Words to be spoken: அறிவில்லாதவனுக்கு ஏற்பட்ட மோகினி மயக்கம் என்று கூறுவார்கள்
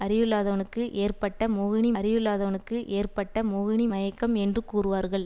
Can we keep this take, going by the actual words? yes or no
no